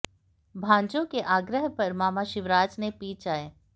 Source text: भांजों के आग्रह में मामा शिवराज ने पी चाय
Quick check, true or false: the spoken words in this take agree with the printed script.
false